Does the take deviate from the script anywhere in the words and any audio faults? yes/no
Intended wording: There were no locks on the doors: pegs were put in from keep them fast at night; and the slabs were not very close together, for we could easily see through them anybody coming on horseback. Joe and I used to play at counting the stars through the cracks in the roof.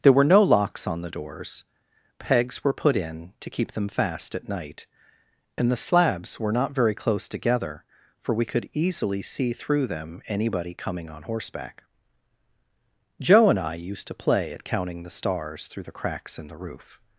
yes